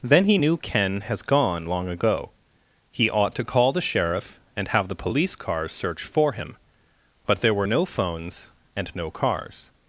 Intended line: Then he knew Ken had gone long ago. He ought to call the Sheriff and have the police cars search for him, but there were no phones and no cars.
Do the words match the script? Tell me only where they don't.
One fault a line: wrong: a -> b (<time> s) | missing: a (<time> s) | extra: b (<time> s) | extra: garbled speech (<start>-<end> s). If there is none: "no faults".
wrong: had -> has (1.0 s)